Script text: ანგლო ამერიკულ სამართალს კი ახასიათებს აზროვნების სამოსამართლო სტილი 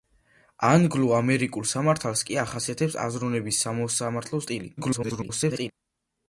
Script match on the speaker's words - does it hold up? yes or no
no